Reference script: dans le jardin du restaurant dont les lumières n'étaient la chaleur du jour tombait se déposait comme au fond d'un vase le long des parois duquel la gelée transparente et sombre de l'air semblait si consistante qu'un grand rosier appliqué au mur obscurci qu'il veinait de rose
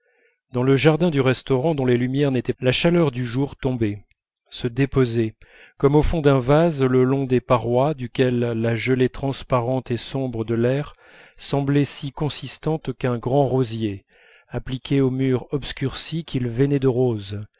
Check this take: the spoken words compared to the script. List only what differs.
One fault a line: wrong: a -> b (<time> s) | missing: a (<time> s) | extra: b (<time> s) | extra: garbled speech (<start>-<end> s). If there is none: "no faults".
no faults